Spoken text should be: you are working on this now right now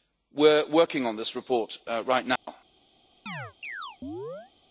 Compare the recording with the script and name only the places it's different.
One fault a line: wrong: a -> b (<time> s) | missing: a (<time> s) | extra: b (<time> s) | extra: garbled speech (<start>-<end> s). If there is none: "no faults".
wrong: you -> we (0.3 s)
wrong: now -> report (1.4 s)